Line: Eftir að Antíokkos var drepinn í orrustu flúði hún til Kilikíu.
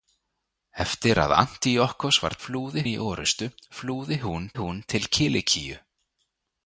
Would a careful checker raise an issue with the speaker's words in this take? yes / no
yes